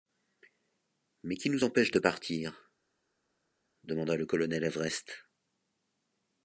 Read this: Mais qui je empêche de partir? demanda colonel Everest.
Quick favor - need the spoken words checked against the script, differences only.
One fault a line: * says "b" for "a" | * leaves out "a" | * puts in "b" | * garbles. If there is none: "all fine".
* says "nous" for "je"
* puts in "le"